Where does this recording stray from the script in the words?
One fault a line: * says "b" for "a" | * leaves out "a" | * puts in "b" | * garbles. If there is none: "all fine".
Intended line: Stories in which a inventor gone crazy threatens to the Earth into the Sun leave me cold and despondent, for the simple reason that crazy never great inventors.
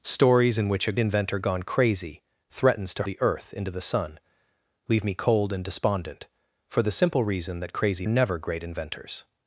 all fine